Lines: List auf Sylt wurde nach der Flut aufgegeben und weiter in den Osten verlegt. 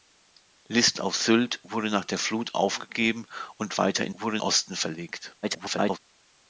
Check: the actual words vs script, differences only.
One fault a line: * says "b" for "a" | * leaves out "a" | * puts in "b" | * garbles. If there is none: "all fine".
* says "wurde" for "den"
* garbles